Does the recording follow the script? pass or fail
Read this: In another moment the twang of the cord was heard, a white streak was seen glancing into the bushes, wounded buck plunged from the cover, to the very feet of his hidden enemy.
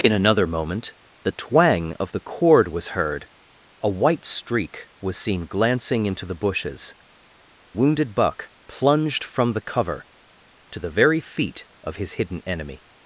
pass